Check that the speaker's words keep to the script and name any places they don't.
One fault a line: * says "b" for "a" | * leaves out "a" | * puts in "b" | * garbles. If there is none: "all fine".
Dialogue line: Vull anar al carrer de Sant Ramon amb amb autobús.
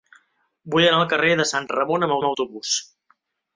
all fine